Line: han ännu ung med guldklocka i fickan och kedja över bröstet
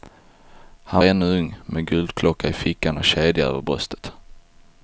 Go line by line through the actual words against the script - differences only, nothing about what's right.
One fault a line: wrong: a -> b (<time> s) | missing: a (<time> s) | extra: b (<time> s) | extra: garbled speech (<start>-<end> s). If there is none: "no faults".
no faults